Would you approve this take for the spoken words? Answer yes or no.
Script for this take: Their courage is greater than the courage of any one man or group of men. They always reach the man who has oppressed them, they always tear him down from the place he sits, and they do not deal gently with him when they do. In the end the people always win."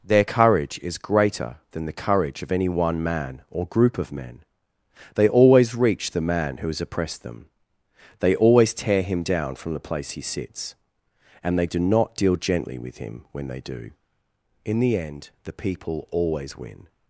yes